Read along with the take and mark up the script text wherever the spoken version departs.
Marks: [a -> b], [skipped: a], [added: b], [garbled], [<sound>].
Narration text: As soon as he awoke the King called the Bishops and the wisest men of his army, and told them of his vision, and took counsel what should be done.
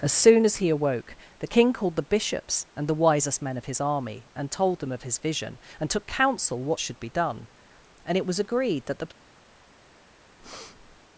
As soon as he awoke the King called the Bishops and the wisest men of his army, and told them of his vision, and took counsel what should be done. [added: And it was agreed that the] [breath]